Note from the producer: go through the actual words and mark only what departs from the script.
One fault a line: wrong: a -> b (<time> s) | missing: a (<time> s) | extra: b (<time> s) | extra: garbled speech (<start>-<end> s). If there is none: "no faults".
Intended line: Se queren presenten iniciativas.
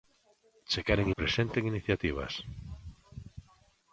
no faults